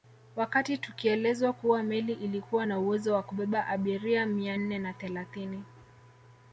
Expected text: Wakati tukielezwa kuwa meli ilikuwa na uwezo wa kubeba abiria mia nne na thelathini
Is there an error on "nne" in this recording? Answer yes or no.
no